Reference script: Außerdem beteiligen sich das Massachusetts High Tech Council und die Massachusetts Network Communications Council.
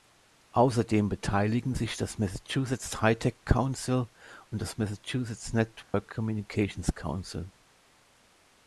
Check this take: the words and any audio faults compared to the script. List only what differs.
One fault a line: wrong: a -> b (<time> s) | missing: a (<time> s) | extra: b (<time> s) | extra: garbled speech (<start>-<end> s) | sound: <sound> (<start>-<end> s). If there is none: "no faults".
wrong: die -> das (4.6 s)
sound: dropout (5.8-5.9 s)